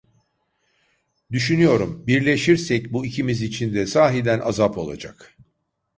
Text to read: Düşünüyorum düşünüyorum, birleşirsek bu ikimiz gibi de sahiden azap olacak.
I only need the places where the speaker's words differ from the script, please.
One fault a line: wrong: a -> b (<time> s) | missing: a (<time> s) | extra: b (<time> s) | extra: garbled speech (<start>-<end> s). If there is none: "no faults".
missing: düşünüyorum (2.1 s)
wrong: gibi -> için (3.4 s)